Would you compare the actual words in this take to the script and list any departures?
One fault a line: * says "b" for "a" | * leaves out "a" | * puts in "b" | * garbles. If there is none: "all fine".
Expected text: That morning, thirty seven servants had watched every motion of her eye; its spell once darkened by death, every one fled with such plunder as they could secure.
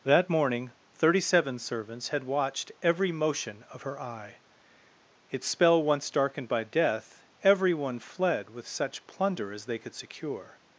all fine